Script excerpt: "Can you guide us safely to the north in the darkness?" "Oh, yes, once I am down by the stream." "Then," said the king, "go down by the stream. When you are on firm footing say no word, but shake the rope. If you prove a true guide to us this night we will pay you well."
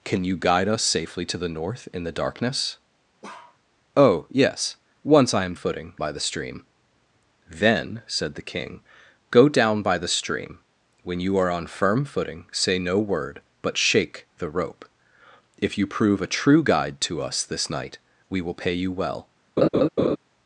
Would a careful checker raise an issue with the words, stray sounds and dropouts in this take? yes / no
yes